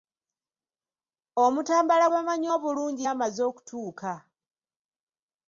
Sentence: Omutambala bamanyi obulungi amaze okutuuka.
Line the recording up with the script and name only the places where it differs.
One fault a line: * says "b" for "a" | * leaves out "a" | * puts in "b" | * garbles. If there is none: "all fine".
all fine